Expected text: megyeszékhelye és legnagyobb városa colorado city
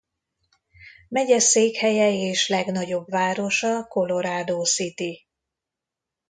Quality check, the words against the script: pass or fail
pass